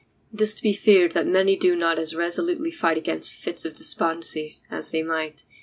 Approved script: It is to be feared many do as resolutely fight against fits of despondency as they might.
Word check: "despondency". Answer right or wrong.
right